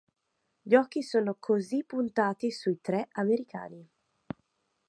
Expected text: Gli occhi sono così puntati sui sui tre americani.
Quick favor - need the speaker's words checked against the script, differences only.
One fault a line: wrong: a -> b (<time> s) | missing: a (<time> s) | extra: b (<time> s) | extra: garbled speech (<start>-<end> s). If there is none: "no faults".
missing: sui (2.8 s)